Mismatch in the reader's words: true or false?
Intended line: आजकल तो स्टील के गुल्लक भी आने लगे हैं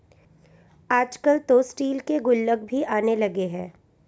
false